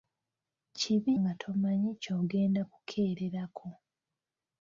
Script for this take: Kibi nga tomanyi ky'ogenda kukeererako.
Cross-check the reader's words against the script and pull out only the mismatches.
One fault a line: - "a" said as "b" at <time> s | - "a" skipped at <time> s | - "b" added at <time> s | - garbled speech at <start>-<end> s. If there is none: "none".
none